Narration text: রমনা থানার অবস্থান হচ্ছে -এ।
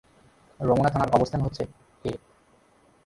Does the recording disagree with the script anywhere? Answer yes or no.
no